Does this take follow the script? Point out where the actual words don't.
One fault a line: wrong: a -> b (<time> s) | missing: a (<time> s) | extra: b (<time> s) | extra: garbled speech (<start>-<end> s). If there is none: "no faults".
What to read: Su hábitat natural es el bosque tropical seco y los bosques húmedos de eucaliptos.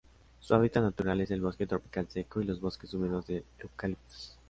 no faults